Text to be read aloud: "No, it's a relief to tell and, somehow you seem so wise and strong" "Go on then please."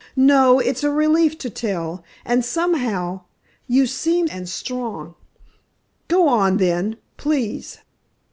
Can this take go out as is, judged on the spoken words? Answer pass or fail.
fail